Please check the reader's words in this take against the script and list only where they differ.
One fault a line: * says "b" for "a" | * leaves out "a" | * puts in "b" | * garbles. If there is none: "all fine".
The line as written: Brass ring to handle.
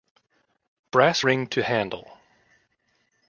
all fine